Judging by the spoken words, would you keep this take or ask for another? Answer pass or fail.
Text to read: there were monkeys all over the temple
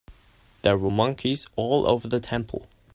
pass